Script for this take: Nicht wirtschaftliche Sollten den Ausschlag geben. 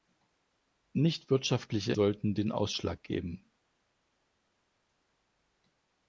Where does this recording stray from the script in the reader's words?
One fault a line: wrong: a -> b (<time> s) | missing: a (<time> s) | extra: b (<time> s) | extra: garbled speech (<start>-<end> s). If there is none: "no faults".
no faults